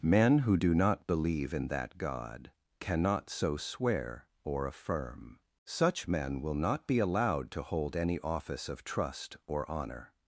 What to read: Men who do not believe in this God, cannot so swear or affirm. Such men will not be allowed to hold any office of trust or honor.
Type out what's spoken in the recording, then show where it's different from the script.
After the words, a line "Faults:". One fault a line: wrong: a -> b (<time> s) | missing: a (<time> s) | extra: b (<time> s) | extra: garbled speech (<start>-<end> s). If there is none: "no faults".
Men who do not believe in that God, cannot so swear or affirm. Such men will not be allowed to hold any office of trust or honor.
Faults:
wrong: this -> that (1.7 s)